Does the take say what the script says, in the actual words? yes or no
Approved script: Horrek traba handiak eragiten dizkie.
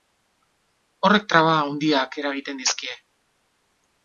yes